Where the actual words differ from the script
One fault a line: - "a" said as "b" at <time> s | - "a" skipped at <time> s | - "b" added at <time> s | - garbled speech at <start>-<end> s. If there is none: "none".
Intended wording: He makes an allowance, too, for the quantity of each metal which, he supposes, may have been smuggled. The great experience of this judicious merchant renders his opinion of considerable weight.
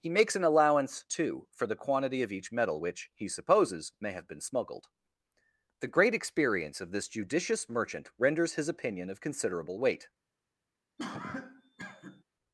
none